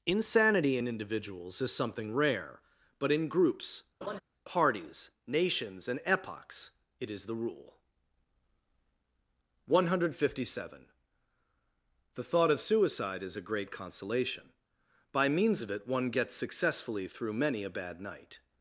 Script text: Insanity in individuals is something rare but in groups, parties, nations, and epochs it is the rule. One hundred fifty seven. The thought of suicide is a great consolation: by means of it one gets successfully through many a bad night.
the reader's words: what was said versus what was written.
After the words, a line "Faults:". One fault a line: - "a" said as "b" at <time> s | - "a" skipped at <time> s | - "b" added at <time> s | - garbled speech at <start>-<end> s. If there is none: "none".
Insanity in individuals is something rare but in groups, parties, nations, and epochs it is the rule. One hundred fifty seven. The thought of suicide is a great consolation: by means of it one gets successfully through many a bad night.
Faults:
none